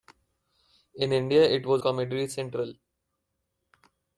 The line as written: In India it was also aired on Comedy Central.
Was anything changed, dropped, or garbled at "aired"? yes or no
yes